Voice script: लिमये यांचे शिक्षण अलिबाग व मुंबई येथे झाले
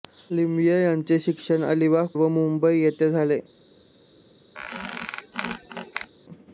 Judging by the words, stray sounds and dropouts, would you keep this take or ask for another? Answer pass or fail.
fail